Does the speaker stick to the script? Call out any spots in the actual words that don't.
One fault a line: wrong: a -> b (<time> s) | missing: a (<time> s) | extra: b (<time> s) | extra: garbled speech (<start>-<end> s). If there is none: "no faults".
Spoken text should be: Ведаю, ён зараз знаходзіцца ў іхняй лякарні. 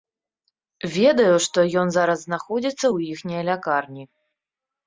extra: што (1.5 s)